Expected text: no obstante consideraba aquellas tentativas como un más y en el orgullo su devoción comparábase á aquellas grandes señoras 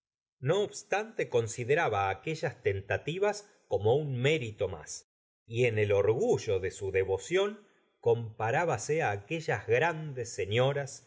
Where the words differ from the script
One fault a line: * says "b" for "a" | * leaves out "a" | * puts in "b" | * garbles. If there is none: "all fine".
* puts in "mérito"
* puts in "de"